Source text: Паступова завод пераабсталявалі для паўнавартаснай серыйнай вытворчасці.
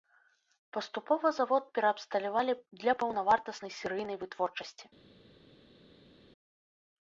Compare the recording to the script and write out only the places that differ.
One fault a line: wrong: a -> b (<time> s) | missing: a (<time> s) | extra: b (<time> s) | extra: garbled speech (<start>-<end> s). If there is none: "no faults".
no faults